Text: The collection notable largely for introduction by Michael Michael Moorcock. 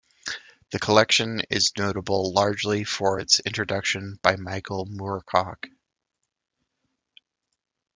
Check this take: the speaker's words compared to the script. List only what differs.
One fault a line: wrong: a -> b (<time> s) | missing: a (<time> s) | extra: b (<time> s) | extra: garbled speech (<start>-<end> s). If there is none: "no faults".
extra: is (1.5 s)
extra: its (3.2 s)
missing: Michael (4.9 s)